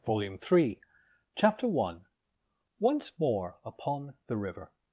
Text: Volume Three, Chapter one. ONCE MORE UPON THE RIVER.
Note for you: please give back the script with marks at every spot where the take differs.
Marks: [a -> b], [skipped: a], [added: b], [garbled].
Volume Three, Chapter one. ONCE MORE UPON THE RIVER.